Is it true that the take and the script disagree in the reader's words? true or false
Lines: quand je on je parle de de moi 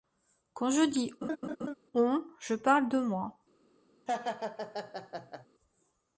true